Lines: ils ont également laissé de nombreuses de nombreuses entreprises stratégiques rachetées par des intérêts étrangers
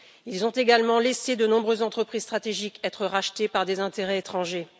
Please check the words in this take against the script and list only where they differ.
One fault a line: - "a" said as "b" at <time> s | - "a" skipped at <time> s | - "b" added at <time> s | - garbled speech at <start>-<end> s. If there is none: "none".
- "de nombreuses" skipped at 1.8 s
- "être" added at 2.8 s